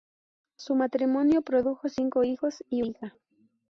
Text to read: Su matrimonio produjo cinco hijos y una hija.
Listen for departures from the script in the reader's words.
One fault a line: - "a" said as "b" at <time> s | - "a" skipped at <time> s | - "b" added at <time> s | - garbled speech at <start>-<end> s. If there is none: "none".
- "una" skipped at 2.8 s